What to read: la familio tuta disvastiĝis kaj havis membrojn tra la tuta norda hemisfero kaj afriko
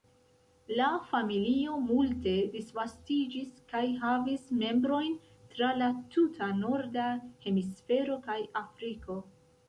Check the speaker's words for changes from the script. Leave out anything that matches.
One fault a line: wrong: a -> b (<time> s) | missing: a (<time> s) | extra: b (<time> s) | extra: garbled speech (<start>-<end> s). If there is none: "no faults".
wrong: tuta -> multe (1.9 s)